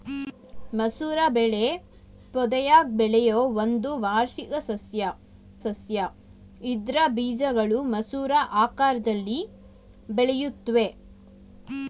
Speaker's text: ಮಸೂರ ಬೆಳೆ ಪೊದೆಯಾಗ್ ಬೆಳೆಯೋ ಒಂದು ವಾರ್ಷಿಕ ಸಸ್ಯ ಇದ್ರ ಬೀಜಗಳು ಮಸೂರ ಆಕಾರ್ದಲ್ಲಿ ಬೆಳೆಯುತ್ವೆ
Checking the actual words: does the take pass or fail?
fail